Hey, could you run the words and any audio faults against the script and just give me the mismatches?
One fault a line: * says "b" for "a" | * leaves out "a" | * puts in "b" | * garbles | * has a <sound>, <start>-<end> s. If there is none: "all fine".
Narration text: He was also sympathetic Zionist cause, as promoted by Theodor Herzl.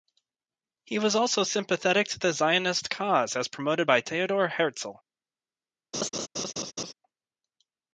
* puts in "to the"
* has a laugh, 5.9-6.9 s